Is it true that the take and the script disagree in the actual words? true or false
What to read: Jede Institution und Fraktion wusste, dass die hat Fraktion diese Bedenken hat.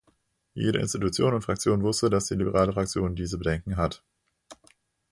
true